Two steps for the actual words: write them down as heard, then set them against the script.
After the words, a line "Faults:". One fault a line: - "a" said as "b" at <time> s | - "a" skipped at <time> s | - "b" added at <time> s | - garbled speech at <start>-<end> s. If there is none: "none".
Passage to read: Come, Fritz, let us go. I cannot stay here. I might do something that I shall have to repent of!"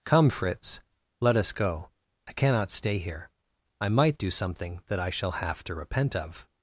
Come, Fritz, let us go. I cannot stay here. I might do something that I shall have to repent of!"
Faults:
none